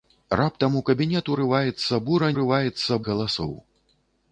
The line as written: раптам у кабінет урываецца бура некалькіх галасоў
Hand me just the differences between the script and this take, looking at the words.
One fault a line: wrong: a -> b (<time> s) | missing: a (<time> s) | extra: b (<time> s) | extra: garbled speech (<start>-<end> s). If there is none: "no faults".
wrong: некалькіх -> урываецца (2.3 s)